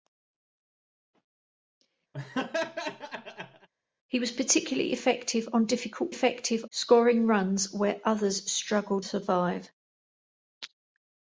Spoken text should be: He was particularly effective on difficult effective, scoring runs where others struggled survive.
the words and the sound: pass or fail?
fail